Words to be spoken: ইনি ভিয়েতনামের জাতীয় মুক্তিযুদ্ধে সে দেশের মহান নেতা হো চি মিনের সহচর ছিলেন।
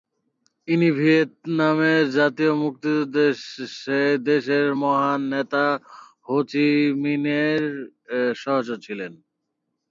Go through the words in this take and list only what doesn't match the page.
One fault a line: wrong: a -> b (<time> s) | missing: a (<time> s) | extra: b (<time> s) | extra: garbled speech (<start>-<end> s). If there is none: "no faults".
no faults